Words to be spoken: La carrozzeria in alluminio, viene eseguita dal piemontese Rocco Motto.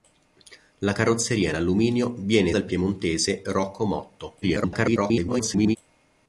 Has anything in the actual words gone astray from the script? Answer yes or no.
yes